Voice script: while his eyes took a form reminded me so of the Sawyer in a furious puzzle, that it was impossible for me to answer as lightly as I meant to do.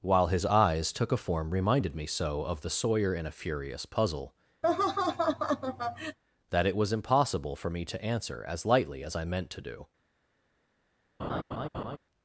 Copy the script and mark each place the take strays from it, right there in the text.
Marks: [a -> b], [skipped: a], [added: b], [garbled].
while his eyes took a form reminded me so of the Sawyer in a furious puzzle, that it was impossible for me to answer as lightly as I meant to do.